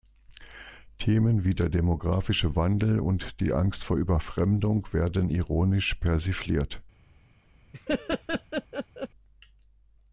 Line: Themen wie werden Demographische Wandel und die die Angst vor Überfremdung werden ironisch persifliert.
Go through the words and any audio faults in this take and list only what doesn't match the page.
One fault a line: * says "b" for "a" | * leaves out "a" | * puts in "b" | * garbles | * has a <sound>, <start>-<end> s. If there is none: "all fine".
* says "der" for "werden"
* leaves out "die"
* has a laugh, 7.7-9.1 s